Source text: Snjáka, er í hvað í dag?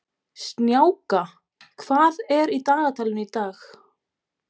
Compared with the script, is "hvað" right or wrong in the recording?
wrong